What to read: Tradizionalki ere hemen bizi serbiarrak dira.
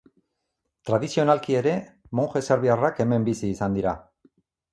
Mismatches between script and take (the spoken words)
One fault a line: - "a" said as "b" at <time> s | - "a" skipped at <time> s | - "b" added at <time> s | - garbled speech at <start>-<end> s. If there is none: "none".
- "monje serbiarrak" added at 2.2 s
- "serbiarrak" said as "izan" at 3.5 s